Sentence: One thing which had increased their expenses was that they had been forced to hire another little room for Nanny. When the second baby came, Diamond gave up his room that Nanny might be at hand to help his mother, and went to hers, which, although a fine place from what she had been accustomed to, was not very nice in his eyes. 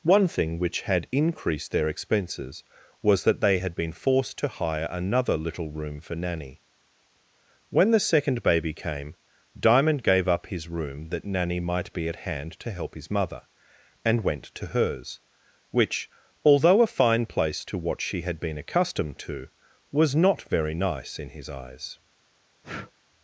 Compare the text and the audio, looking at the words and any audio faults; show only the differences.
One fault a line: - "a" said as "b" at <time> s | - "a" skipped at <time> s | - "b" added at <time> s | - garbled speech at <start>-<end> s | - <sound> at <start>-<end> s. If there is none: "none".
- "from" said as "to" at 17.7 s
- breath at 22.6-22.9 s